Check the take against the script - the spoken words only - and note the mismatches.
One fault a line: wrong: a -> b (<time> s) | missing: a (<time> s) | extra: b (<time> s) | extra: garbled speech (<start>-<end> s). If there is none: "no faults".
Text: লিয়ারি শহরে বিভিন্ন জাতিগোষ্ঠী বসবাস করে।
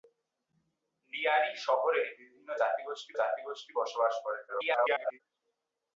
extra: জাতিগোষ্ঠী (3.2 s)
extra: garbled speech (4.5-5.2 s)